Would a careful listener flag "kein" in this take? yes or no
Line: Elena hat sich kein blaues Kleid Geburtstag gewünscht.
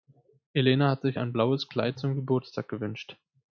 yes